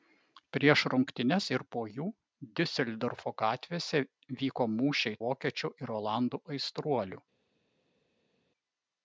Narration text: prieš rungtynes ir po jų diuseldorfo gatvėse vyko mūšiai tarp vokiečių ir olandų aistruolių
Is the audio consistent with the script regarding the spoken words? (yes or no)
no